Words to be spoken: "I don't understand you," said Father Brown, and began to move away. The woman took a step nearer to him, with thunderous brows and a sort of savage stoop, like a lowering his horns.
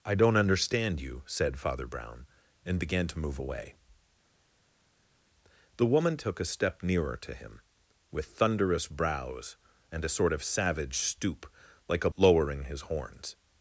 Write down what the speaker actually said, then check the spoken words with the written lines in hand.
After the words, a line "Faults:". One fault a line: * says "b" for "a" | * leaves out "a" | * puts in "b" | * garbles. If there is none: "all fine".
"I don't understand you," said Father Brown, and began to move away. The woman took a step nearer to him, with thunderous brows and a sort of savage stoop, like a lowering his horns.
Faults:
all fine